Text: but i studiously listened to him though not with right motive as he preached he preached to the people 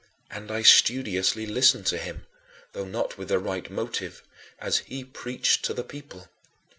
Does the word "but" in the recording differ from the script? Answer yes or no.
yes